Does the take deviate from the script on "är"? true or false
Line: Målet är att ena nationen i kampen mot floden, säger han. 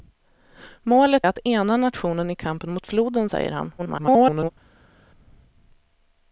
true